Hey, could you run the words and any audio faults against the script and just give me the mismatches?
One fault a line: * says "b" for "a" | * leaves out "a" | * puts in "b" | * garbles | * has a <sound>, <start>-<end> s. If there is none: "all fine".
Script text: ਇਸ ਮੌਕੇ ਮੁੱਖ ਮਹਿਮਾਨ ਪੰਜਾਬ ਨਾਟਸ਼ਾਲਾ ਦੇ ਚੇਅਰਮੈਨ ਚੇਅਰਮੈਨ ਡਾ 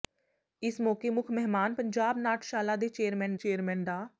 all fine